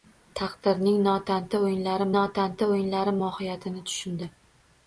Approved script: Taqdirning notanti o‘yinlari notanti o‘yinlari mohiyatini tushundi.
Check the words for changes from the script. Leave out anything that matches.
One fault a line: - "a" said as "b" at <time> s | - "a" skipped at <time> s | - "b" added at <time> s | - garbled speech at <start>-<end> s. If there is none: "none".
none